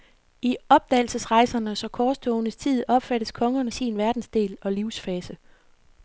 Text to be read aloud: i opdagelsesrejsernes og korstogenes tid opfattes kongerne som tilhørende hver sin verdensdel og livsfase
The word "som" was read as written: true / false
false